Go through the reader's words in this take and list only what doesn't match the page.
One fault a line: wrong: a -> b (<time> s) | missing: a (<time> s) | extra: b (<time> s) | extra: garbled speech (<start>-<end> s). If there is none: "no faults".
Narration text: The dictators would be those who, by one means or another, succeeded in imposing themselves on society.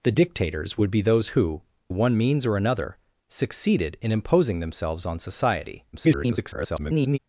missing: by (1.6 s)
extra: garbled speech (5.9-7.2 s)